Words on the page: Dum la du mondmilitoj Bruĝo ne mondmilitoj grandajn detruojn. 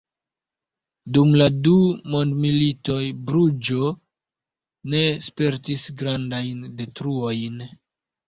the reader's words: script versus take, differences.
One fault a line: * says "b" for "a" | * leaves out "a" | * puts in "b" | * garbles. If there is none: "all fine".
* says "spertis" for "mondmilitoj"